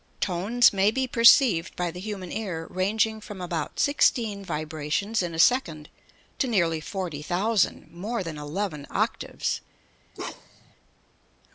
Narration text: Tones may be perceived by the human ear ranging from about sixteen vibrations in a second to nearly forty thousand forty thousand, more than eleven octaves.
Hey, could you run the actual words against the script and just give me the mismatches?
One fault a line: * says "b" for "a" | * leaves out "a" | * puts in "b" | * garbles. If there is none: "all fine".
* leaves out "forty thousand"